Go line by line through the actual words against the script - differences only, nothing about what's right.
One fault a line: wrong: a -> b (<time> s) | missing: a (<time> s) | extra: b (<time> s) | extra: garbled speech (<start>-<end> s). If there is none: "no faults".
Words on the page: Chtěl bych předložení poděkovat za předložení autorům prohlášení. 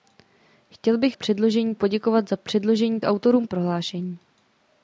no faults